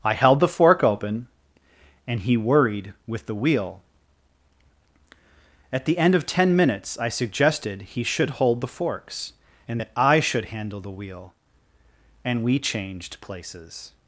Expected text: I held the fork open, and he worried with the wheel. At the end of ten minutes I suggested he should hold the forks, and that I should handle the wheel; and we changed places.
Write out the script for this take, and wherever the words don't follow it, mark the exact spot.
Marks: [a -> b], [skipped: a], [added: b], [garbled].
I held the fork open, and he worried with the wheel. At the end of ten minutes I suggested he should hold the forks, and that I should handle the wheel; and we changed places.